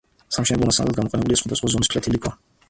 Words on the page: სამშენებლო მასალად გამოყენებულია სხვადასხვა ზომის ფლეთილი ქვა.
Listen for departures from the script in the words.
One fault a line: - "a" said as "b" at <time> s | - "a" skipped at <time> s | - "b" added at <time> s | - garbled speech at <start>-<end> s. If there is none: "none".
none